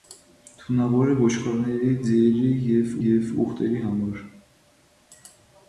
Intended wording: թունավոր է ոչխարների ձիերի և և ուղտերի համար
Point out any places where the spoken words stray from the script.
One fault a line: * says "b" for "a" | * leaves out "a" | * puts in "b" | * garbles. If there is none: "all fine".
all fine